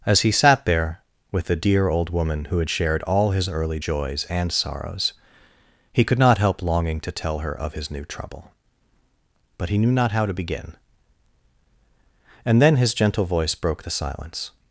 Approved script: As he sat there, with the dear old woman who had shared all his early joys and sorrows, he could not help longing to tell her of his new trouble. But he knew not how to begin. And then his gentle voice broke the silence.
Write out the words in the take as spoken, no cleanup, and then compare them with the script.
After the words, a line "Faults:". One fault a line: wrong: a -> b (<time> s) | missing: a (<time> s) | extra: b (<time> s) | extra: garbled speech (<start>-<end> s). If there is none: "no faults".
As he sat there, with the dear old woman who had shared all his early joys and sorrows, he could not help longing to tell her of his new trouble. But he knew not how to begin. And then his gentle voice broke the silence.
Faults:
no faults